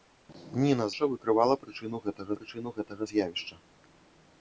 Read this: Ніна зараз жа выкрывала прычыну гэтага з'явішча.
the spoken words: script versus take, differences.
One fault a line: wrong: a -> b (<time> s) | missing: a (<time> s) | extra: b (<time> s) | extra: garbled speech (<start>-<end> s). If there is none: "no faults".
missing: зараз (0.9 s)
extra: прычыну гэтага (2.4 s)